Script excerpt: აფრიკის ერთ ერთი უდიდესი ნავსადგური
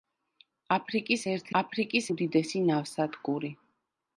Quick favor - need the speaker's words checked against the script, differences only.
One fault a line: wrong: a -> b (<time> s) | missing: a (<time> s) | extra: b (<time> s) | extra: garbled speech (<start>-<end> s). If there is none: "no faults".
wrong: ერთი -> აფრიკის (1.6 s)